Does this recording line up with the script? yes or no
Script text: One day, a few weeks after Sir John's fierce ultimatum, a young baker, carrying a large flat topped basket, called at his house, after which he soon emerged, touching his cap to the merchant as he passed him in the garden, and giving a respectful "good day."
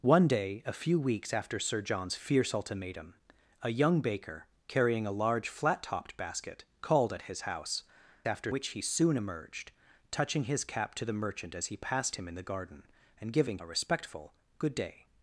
yes